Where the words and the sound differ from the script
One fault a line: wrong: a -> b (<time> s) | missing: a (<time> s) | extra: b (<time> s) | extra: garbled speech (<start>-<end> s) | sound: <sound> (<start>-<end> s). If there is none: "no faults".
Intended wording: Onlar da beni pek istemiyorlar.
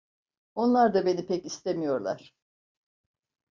no faults